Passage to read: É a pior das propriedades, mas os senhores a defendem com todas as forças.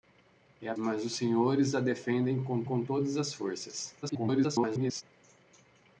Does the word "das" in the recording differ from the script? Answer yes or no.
yes